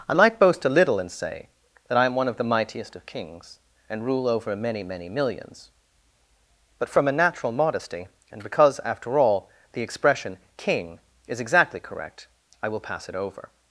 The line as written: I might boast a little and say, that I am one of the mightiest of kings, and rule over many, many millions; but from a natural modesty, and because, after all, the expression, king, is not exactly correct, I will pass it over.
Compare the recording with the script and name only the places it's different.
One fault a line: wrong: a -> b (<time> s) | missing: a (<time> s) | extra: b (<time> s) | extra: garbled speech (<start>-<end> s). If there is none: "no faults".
missing: not (11.4 s)